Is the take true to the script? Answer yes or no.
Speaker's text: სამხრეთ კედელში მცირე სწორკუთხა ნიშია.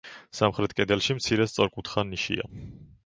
yes